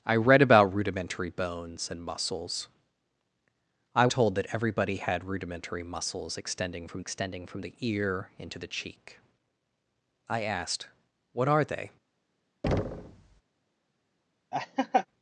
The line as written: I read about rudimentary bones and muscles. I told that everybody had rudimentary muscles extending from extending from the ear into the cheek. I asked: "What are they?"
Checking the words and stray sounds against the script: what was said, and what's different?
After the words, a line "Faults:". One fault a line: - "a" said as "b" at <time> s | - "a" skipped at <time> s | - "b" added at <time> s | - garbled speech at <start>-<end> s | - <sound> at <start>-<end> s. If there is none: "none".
I read about rudimentary bones and muscles. I told that everybody had rudimentary muscles extending from extending from the ear into the cheek. I asked: "What are they?"
Faults:
- thud at 12.6-13.4 s
- laugh at 14.5-15.1 s